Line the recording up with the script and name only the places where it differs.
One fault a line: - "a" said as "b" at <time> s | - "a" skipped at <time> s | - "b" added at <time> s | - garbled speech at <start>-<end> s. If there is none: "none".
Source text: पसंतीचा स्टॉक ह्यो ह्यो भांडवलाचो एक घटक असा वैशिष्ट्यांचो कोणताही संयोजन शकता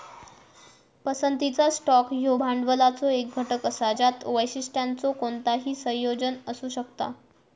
- "ह्यो" skipped at 2.4 s
- "ज्यात" added at 3.9 s
- "असू" added at 6.5 s